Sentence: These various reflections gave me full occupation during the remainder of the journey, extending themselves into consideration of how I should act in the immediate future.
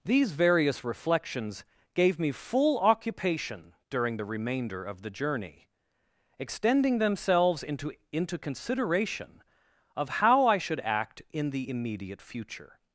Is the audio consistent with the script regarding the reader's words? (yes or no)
no